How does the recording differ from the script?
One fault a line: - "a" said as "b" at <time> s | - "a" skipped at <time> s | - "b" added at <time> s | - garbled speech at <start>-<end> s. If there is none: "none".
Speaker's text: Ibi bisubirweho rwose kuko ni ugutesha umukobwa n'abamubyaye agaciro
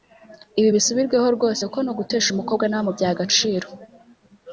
none